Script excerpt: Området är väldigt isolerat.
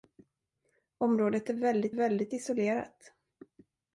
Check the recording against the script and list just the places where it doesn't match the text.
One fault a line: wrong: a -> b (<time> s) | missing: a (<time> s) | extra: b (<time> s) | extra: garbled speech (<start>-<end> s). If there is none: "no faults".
extra: väldigt (1.9 s)